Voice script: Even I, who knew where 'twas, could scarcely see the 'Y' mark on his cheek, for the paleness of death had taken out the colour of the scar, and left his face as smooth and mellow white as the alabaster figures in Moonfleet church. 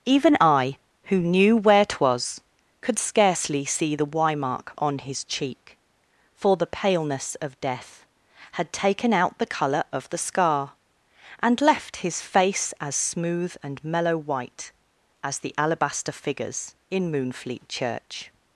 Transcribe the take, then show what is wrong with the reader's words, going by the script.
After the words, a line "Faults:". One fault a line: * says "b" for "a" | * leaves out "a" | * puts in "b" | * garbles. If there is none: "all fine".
Even I, who knew where 'twas, could scarcely see the 'Y' mark on his cheek, for the paleness of death had taken out the colour of the scar, and left his face as smooth and mellow white as the alabaster figures in Moonfleet church.
Faults:
all fine